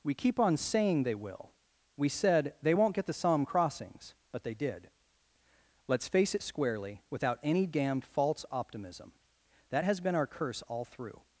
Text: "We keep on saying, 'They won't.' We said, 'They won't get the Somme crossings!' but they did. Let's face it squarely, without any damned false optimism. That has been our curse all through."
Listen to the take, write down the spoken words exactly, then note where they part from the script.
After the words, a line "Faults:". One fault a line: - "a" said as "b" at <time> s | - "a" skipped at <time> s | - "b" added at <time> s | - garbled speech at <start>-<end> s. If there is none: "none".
"We keep on saying, 'They will.' We said, 'They won't get the Somme crossings!' but they did. Let's face it squarely, without any damned false optimism. That has been our curse all through."
Faults:
- "won't" said as "will" at 1.1 s